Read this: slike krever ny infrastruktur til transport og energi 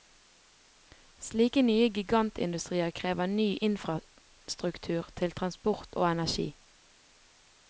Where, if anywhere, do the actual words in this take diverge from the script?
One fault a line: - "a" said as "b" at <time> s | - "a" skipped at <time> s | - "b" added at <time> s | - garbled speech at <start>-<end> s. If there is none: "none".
- "nye gigantindustrier" added at 1.7 s